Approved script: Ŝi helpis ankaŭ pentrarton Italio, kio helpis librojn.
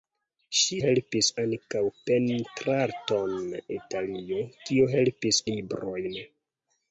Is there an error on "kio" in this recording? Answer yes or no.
no